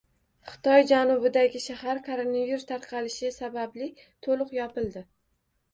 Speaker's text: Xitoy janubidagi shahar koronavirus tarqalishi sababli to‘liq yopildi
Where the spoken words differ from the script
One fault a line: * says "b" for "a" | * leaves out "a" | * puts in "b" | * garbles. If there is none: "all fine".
all fine